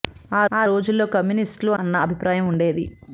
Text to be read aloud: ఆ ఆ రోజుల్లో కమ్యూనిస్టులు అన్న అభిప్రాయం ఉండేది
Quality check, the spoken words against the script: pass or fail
pass